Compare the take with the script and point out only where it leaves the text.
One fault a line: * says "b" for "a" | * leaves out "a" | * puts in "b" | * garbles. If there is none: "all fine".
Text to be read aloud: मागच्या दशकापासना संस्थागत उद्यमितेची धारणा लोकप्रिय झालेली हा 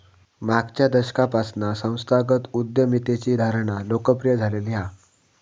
all fine